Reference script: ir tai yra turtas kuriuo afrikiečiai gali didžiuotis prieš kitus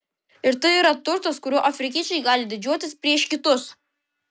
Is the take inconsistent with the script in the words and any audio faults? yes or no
no